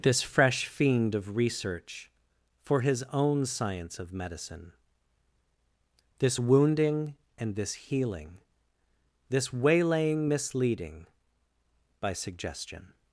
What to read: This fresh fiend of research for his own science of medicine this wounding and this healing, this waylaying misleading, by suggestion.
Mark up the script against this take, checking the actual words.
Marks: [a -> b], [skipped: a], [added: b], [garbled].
This fresh fiend of research for his own science of medicine this wounding and this healing, this waylaying misleading, by suggestion.